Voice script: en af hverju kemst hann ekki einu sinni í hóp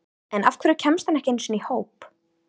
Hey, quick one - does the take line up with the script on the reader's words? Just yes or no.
yes